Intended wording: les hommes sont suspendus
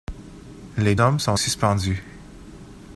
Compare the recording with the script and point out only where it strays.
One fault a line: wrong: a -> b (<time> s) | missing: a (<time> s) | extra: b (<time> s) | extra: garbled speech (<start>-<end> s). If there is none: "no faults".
no faults